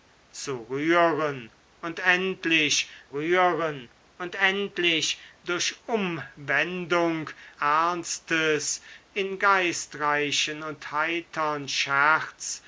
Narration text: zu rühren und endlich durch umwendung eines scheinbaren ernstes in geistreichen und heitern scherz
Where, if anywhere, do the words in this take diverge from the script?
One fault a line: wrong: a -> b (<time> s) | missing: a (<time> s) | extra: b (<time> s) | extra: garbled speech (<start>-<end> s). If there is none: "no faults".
extra: rühren und endlich (3.1 s)
missing: eines scheinbaren (7.3 s)